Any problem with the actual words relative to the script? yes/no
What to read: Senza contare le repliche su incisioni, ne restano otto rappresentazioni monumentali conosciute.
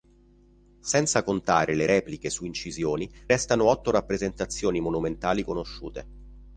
yes